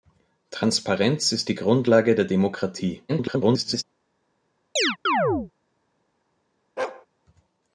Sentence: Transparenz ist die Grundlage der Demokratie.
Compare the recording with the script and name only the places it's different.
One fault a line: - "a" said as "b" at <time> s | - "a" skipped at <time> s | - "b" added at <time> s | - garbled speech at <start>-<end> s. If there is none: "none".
- garbled speech at 3.1-3.8 s